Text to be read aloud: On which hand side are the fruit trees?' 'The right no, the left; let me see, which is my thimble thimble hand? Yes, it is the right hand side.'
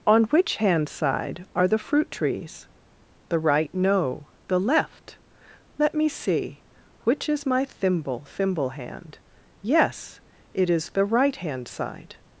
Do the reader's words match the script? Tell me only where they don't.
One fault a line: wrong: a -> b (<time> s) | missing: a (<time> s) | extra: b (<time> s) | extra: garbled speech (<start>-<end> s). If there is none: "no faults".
no faults